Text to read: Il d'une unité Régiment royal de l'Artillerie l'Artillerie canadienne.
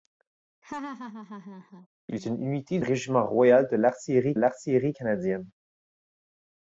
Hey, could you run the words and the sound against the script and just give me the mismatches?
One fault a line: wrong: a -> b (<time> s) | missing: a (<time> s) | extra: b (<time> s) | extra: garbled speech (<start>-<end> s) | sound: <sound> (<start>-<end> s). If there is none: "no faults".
sound: laugh (0.6-1.9 s)